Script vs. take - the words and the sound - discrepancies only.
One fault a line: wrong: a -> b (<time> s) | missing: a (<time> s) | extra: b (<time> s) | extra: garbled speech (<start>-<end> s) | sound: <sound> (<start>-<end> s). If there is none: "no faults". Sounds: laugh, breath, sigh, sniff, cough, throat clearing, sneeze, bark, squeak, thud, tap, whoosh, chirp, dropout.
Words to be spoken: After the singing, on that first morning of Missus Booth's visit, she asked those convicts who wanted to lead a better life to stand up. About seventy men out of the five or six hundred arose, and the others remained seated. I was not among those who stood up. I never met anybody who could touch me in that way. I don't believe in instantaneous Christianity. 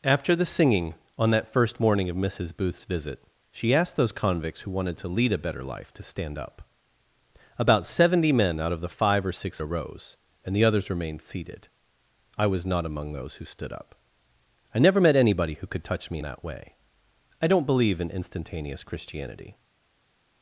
missing: hundred (9.6 s)
missing: in (16.2 s)